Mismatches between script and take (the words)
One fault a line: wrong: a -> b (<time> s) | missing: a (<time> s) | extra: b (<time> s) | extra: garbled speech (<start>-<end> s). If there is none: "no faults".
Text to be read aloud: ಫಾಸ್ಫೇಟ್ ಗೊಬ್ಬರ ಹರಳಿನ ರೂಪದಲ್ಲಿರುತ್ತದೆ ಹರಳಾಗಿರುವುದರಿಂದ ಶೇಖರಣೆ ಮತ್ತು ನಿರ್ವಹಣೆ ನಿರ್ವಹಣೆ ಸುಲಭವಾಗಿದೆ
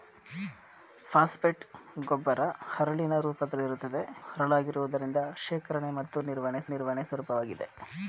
no faults